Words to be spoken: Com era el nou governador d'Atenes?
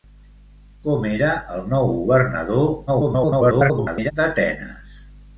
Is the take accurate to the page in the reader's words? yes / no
no